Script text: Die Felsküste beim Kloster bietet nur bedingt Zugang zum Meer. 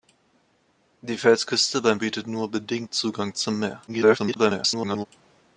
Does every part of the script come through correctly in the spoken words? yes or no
no